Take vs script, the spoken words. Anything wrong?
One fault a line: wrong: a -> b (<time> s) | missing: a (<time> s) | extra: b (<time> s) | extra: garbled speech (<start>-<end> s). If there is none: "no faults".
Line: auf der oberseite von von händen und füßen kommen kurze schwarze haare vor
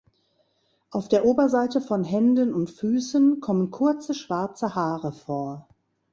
missing: von (2.0 s)